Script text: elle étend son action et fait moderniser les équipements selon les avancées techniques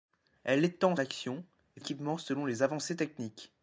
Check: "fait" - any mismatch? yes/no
yes